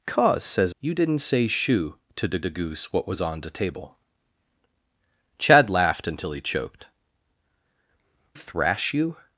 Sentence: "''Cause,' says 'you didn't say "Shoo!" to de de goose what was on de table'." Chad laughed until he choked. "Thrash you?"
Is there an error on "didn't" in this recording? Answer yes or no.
no